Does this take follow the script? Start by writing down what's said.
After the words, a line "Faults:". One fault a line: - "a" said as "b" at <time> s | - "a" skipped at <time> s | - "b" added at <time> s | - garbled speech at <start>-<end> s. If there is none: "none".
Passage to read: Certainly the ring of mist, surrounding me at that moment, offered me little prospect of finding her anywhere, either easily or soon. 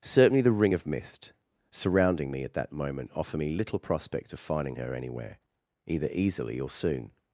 Certainly the ring of mist, surrounding me at that moment, offer me little prospect of finding her anywhere, either easily or soon.
Faults:
- "offered" said as "offer" at 3.1 s